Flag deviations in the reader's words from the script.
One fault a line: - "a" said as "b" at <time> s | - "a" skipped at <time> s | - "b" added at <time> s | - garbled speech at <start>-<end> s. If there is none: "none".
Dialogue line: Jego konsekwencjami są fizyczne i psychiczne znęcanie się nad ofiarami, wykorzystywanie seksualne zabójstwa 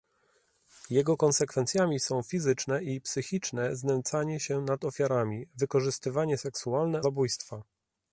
none